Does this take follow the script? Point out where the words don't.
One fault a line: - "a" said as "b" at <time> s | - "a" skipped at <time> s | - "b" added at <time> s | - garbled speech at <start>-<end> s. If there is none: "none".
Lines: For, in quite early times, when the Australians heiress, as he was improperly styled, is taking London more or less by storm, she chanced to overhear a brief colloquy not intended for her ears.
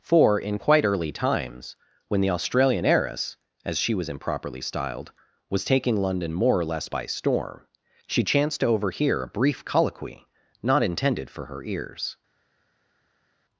- "Australians" said as "Australian" at 2.3 s
- "he" said as "she" at 3.8 s
- "is" said as "was" at 5.5 s